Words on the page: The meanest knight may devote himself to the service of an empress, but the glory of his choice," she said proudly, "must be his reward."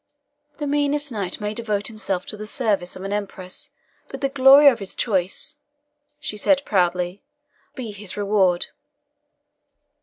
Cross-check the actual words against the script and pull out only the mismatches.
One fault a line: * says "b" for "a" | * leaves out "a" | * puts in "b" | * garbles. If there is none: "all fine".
* leaves out "must"